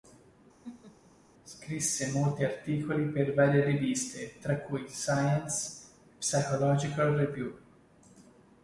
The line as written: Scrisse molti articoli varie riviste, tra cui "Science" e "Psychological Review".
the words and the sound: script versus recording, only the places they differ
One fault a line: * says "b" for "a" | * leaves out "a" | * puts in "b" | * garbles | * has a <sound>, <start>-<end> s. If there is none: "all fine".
* has a laugh, 0.6-1.1 s
* puts in "per"